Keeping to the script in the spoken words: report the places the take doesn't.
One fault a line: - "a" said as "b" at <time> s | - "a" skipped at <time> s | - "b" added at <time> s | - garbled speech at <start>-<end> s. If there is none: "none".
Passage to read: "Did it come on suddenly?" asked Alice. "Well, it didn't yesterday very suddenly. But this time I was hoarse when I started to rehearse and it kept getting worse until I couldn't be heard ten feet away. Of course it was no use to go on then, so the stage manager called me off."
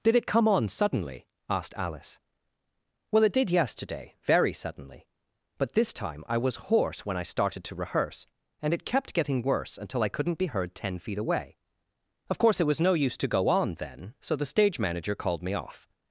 - "didn't" said as "did" at 3.3 s